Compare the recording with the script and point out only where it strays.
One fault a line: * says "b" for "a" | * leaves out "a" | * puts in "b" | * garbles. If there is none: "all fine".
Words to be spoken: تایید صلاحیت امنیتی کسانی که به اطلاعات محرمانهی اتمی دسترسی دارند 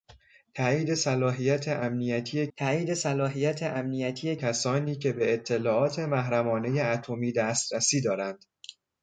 * puts in "تایید صلاحیت امنیتی"